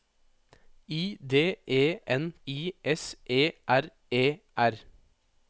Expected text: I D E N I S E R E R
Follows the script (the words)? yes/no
yes